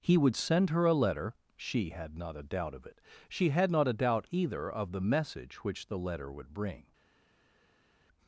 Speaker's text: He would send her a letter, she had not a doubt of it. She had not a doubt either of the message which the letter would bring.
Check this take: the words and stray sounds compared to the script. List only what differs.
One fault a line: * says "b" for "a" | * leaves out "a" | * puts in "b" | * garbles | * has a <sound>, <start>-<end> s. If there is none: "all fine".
all fine